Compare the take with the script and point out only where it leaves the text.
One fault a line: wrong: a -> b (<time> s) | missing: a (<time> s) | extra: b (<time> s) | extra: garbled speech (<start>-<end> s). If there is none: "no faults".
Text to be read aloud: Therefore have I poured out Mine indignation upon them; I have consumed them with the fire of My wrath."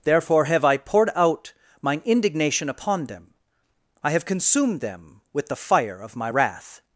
no faults